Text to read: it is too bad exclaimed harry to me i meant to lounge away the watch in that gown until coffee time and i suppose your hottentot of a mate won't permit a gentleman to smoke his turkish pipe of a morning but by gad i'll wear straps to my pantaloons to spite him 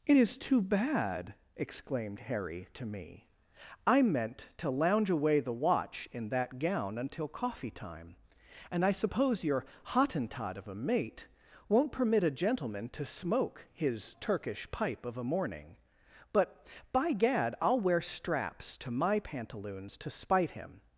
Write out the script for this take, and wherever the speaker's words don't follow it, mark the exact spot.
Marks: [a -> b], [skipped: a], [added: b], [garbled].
it is too bad exclaimed harry to me i meant to lounge away the watch in that gown until coffee time and i suppose your hottentot of a mate won't permit a gentleman to smoke his turkish pipe of a morning but by gad i'll wear straps to my pantaloons to spite him